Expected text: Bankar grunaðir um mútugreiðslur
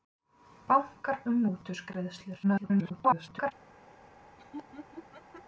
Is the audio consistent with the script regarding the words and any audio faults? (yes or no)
no